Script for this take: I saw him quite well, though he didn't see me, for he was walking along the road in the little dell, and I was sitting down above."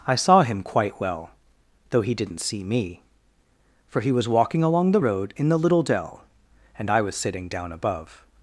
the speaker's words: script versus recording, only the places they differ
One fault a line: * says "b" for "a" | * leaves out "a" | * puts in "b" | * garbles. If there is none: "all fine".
all fine